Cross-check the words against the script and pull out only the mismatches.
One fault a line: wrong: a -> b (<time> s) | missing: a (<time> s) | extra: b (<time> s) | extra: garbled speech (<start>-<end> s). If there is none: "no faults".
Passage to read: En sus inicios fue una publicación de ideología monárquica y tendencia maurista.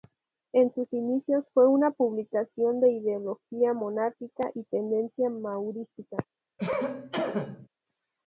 no faults